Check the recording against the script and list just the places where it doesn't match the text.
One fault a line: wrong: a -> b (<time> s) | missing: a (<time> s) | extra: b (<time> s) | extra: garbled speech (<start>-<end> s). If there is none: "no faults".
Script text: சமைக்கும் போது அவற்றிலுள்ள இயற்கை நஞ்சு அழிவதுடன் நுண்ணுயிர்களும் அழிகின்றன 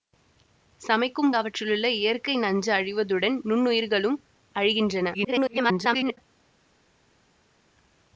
missing: போது (1.3 s)
extra: garbled speech (5.1-6.2 s)